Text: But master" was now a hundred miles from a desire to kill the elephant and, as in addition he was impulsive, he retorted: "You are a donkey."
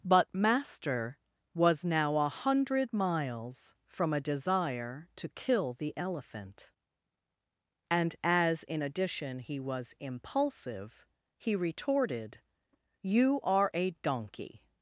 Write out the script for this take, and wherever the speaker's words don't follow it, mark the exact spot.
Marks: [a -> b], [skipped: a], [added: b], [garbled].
But master" was now a hundred miles from a desire to kill the elephant and, as in addition he was impulsive, he retorted: "You are a donkey."